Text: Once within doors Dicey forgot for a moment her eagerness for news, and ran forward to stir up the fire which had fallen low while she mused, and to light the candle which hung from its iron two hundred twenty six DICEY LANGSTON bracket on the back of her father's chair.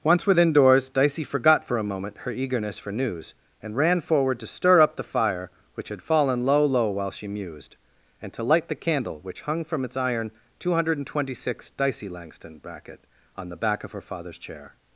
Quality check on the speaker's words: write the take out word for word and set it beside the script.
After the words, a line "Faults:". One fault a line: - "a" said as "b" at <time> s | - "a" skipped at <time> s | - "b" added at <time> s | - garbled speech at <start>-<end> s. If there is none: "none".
Once within doors Dicey forgot for a moment her eagerness for news, and ran forward to stir up the fire which had fallen low low while she mused, and to light the candle which hung from its iron two hundred twenty six DICEY LANGSTON bracket on the back of her father's chair.
Faults:
- "low" added at 6.7 s